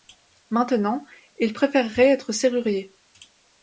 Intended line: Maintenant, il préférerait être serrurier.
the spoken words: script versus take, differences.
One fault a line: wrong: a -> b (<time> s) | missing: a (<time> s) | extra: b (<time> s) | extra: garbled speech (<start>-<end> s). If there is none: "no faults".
no faults